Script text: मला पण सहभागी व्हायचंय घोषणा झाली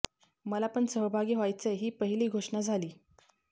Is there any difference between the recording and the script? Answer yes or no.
yes